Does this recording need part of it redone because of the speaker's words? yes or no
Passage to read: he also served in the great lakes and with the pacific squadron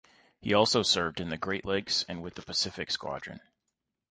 no